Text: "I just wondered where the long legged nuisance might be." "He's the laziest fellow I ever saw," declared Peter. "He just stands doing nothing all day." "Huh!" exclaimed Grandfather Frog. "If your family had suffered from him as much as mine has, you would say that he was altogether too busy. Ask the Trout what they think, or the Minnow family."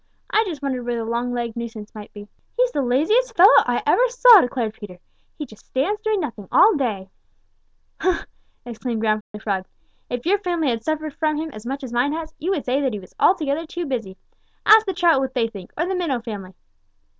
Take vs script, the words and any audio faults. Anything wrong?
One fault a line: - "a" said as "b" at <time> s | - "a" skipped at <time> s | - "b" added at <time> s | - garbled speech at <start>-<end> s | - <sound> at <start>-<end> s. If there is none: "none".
- dropout at 9.2-9.3 s